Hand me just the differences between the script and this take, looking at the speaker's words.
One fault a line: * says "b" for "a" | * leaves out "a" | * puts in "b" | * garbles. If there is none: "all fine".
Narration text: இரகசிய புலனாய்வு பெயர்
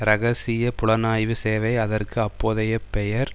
* puts in "சேவை அதற்கு அப்போதைய"